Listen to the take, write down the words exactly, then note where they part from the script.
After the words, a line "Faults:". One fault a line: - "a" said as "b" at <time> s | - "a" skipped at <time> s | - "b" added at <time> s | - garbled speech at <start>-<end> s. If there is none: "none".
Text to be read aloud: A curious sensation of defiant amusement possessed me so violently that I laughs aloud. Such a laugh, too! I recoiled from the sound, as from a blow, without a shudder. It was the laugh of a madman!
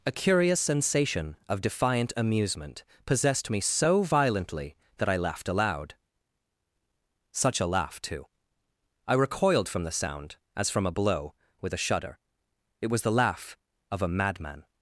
A curious sensation of defiant amusement possessed me so violently that I laughed aloud. Such a laugh, too! I recoiled from the sound, as from a blow, with a shudder. It was the laugh of a madman!
Faults:
- "laughs" said as "laughed" at 5.2 s
- "without" said as "with" at 11.6 s